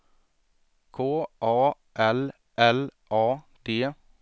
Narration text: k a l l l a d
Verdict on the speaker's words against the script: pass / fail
fail